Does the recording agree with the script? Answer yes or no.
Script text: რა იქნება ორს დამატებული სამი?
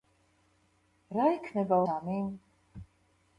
no